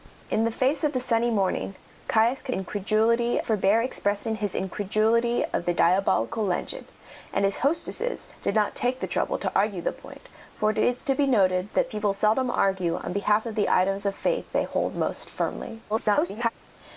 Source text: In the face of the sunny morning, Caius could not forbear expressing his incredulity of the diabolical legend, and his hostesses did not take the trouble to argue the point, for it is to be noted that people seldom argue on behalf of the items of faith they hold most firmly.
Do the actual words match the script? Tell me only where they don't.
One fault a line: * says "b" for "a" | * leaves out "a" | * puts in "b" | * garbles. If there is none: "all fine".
* says "incredulity" for "not"
* garbles